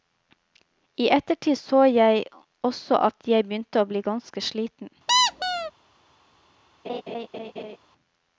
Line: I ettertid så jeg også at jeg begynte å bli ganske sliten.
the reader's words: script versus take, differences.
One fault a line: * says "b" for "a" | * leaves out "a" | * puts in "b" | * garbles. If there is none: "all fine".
all fine